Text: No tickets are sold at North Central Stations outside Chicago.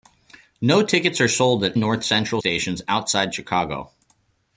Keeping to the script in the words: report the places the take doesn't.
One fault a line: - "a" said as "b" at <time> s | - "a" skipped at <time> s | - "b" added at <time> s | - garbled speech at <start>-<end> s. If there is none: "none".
none